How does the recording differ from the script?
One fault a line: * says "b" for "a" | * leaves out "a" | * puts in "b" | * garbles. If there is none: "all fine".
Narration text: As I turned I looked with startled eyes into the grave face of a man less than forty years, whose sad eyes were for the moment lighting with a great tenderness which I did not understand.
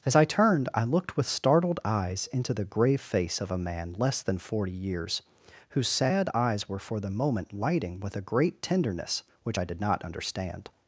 all fine